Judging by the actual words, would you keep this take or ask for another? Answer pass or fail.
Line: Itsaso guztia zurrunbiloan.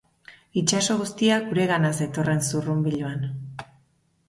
fail